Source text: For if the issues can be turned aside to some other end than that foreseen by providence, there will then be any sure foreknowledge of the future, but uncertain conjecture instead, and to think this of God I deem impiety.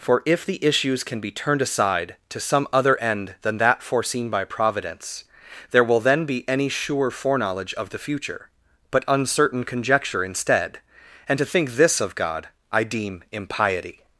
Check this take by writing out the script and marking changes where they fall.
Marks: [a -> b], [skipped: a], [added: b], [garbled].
For if the issues can be turned aside to some other end than that foreseen by providence, there will then be any sure foreknowledge of the future, but uncertain conjecture instead, and to think this of God I deem impiety.